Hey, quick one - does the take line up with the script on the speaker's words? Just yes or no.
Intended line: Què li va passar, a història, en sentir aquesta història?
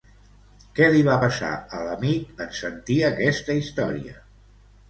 no